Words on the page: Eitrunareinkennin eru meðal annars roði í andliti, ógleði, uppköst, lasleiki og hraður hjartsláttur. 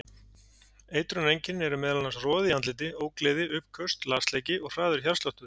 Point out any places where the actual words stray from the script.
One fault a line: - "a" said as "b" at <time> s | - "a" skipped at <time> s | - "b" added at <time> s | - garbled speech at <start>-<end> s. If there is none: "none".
none